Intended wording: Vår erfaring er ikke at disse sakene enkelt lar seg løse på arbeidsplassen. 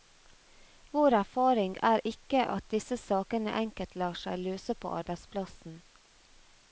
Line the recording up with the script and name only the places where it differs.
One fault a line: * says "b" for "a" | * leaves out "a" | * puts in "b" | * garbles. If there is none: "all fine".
all fine